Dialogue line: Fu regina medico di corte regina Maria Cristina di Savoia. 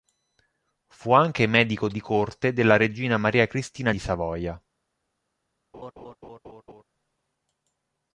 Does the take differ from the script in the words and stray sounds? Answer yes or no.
yes